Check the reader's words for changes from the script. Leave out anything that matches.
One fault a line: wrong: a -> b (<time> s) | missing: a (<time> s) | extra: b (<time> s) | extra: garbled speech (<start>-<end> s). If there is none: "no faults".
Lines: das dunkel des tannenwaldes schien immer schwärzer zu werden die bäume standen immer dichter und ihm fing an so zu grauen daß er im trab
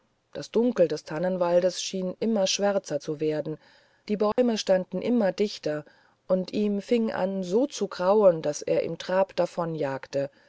no faults